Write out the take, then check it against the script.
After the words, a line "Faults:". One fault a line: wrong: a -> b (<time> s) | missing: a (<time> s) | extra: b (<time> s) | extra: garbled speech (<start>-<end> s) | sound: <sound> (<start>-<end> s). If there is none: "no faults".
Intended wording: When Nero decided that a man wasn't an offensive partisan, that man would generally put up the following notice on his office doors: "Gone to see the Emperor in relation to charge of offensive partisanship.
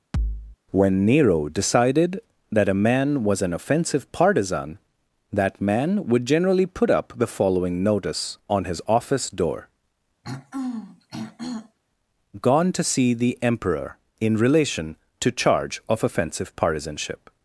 When Nero decided that a man was an offensive partisan, that man would generally put up the following notice on his office door: "Gone to see the Emperor in relation to charge of offensive partisanship.
Faults:
sound: thud (0.1-0.6 s)
wrong: wasn't -> was (3.2 s)
wrong: doors -> door (9.3 s)
sound: throat clearing (10.2-11.8 s)